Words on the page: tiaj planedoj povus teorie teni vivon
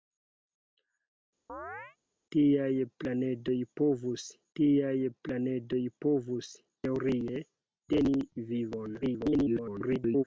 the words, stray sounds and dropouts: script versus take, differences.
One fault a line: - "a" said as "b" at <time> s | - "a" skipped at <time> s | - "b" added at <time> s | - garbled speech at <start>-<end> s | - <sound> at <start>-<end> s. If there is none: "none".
- chirp at 1.5-2.0 s
- "tiaj planedoj povus" added at 4.6 s
- garbled speech at 9.0-10.2 s